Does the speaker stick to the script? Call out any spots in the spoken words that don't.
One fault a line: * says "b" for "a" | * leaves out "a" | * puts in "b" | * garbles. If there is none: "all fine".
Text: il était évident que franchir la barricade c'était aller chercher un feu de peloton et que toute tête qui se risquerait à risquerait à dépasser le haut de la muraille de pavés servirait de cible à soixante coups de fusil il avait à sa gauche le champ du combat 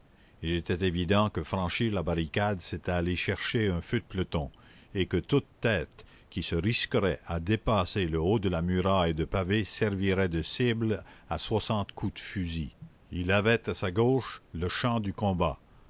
* leaves out "risquerait à"